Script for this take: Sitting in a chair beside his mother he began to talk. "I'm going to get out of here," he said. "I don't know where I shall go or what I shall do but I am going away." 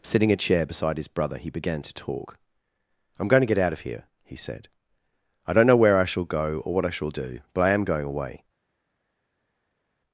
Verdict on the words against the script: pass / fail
fail